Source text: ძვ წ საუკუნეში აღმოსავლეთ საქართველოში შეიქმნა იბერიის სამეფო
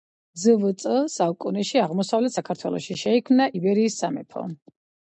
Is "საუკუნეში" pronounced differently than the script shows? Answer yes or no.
no